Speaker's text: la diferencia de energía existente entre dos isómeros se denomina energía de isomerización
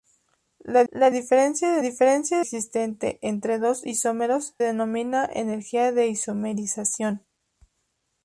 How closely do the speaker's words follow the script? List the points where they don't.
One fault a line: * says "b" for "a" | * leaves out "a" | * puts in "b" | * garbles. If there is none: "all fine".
* puts in "la"
* says "diferencia" for "energía"
* leaves out "se"